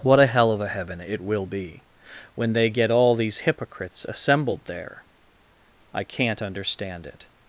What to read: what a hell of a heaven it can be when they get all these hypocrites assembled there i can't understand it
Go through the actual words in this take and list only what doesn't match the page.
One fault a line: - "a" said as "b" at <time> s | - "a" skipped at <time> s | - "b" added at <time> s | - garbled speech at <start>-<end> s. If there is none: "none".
- "can" said as "will" at 1.2 s